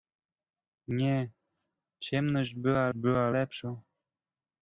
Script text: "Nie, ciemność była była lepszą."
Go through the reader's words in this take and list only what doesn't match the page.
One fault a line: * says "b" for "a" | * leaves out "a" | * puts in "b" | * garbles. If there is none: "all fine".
all fine